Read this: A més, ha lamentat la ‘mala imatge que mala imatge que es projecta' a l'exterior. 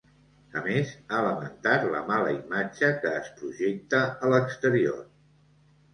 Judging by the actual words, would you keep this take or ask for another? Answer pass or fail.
fail